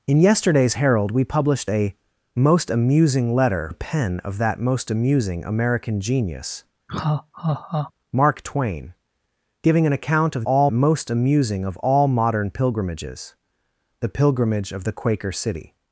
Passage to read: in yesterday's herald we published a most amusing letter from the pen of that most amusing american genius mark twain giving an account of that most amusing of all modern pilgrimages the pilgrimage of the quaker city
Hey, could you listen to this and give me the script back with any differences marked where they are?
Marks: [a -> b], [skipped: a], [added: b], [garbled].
in yesterday's herald we published a most amusing letter [skipped: from] the pen of that most amusing american genius mark twain giving an account of [that -> all] most amusing of all modern pilgrimages the pilgrimage of the quaker city